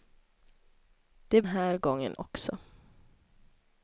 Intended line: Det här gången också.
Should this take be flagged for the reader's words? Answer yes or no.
no